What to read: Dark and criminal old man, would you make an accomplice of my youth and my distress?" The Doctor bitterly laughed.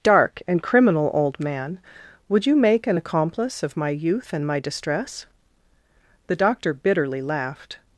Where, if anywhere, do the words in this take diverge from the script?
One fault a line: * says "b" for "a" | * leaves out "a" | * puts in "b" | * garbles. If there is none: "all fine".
all fine